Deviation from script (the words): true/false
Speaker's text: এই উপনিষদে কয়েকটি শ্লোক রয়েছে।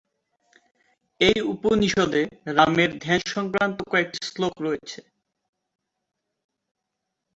true